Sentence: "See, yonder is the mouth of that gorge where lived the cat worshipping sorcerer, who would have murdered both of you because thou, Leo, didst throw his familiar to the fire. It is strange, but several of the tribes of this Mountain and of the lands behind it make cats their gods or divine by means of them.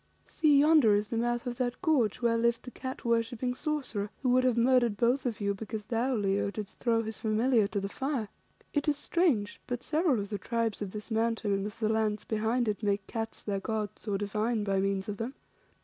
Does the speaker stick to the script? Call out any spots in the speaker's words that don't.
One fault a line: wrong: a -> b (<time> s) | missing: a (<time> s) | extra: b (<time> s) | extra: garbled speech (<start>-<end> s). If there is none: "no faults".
no faults